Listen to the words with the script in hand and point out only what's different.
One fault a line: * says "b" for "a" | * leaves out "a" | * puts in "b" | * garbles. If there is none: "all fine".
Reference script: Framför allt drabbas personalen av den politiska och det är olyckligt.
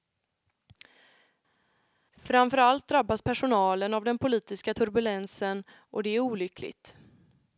* puts in "turbulensen"